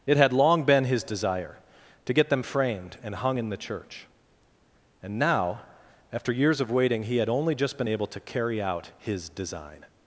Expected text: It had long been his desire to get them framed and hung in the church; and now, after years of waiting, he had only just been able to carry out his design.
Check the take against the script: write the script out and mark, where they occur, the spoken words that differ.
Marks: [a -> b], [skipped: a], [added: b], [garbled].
It had long been his desire to get them framed and hung in the church; and now, after years of waiting, he had only just been able to carry out his design.